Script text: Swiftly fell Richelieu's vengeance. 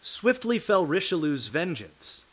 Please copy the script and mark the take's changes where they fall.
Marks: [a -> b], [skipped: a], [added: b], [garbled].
Swiftly fell Richelieu's vengeance.